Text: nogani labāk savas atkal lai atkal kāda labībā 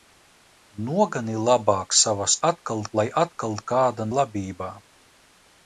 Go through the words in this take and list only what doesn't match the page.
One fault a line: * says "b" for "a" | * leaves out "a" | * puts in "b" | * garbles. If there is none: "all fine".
all fine